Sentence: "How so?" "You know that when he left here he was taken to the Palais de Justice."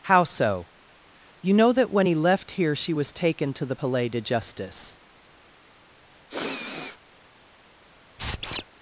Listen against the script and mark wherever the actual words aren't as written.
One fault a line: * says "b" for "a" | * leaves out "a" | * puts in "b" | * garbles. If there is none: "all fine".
* says "she" for "he"